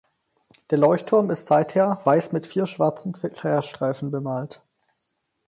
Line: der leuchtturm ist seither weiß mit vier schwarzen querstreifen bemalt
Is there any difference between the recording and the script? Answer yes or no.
no